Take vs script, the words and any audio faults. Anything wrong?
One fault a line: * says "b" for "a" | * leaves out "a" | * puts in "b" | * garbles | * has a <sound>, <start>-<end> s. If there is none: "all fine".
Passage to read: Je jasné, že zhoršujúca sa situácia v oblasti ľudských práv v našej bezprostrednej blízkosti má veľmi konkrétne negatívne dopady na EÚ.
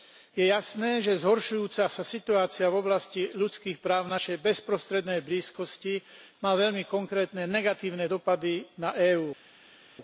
all fine